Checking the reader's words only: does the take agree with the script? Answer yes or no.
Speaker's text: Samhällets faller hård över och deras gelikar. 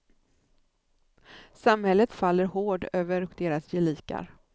yes